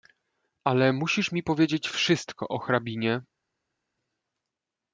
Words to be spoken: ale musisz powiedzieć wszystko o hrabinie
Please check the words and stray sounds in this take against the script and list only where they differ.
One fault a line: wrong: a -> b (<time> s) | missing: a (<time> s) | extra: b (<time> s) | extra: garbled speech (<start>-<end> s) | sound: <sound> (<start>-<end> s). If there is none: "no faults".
extra: mi (1.3 s)